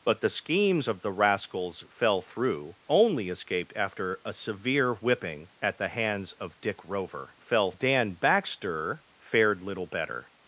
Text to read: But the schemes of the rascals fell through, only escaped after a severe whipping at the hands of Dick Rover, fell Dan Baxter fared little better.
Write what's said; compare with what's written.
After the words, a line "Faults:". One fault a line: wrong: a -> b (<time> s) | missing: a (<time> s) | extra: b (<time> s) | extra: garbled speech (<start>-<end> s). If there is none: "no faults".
But the schemes of the rascals fell through, only escaped after a severe whipping at the hands of Dick Rover, fell Dan Baxter fared little better.
Faults:
no faults